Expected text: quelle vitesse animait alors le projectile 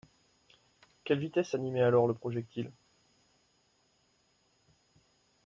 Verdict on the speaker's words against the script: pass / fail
pass